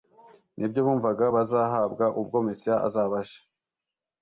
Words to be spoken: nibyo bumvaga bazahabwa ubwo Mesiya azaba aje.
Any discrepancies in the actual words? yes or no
no